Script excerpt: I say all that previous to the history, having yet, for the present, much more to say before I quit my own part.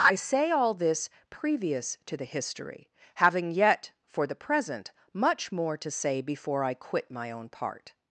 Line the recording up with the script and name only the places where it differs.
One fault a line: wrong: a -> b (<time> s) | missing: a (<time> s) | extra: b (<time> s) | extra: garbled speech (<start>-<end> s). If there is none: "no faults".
wrong: that -> this (0.7 s)